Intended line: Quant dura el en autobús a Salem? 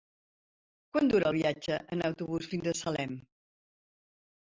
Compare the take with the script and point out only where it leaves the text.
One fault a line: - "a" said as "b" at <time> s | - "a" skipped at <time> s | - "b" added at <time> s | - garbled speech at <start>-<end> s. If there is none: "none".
- "viatge" added at 1.4 s
- "fins" added at 2.5 s